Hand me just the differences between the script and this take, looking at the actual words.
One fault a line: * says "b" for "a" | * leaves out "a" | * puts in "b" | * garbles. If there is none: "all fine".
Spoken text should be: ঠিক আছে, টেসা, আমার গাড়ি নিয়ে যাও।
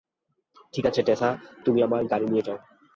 * puts in "তুমি"